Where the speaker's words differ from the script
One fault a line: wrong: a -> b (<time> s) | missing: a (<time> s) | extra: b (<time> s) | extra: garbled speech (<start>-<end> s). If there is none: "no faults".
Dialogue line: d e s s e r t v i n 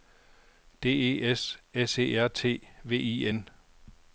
no faults